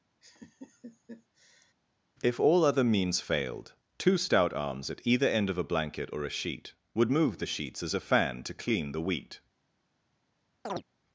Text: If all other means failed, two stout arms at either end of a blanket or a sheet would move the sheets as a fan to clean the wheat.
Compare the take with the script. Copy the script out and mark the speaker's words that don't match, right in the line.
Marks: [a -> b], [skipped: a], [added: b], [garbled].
If all other means failed, two stout arms at either end of a blanket or a sheet would move the sheets as a fan to clean the wheat.